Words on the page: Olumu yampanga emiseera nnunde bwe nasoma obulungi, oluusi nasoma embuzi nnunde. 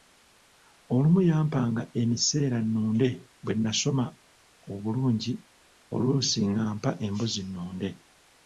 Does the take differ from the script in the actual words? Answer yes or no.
yes